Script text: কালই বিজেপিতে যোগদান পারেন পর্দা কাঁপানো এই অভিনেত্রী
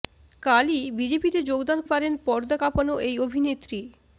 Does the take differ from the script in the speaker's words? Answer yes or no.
no